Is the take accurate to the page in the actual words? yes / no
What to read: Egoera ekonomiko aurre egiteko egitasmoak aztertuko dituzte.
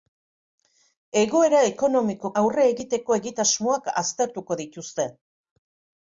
yes